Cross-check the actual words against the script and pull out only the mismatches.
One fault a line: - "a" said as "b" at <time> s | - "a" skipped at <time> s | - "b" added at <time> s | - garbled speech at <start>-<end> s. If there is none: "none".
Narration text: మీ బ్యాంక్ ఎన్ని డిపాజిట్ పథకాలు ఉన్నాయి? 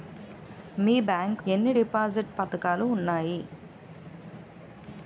none